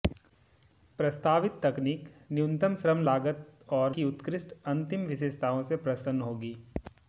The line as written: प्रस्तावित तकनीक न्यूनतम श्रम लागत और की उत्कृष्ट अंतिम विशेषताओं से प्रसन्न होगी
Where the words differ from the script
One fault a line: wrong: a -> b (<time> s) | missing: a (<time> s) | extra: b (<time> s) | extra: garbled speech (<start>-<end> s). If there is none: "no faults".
no faults